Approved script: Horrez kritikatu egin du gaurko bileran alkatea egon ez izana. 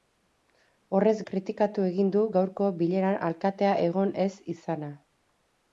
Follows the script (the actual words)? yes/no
yes